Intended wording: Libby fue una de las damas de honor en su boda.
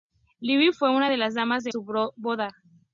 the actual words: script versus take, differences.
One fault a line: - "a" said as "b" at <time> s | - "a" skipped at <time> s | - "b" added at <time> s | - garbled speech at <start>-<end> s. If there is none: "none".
- "honor en" skipped at 1.7 s